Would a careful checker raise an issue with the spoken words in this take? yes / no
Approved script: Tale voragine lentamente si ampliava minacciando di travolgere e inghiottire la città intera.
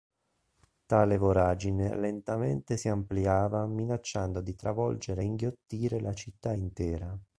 no